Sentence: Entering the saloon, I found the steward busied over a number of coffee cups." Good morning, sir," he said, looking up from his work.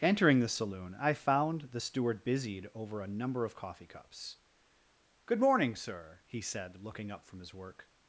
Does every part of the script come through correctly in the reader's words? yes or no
yes